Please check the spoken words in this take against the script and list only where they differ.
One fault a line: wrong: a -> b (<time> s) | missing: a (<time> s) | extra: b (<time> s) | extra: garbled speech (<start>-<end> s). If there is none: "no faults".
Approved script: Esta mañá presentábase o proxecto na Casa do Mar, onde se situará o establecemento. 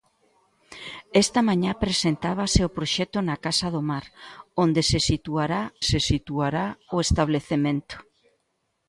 extra: se situará (5.9 s)